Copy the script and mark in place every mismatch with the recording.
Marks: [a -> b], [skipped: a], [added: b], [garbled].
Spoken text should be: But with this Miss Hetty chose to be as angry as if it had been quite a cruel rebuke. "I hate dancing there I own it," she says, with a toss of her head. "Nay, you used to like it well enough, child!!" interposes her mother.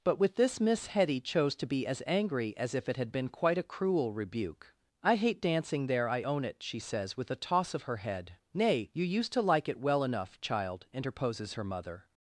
But with this Miss Hetty chose to be as angry as if it had been quite a cruel rebuke. "I hate dancing there I own it," she says, with a toss of her head. "Nay, you used to like it well enough, child!!" interposes her mother.